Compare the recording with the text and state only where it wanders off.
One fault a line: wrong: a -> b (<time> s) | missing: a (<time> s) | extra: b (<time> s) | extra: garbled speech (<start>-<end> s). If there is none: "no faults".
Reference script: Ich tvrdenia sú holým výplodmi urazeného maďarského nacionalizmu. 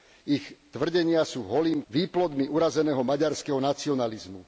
no faults